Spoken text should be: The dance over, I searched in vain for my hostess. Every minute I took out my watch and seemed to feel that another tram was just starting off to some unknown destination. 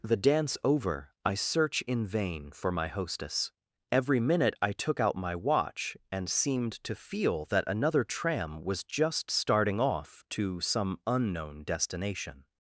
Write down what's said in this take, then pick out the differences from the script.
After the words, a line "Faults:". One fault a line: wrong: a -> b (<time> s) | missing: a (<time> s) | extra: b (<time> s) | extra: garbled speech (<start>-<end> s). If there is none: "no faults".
The dance over, I search in vain for my hostess. Every minute I took out my watch and seemed to feel that another tram was just starting off to some unknown destination.
Faults:
wrong: searched -> search (1.4 s)